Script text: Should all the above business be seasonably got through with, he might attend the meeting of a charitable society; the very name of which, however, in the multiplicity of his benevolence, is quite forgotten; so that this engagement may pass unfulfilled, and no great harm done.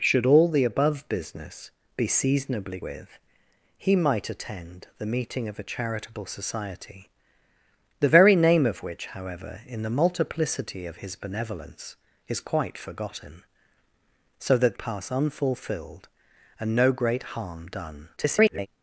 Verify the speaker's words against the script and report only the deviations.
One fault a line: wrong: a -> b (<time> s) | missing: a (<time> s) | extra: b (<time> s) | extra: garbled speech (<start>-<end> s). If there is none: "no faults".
missing: got through (2.8 s)
missing: this engagement may (14.8 s)
extra: garbled speech (18.2-18.7 s)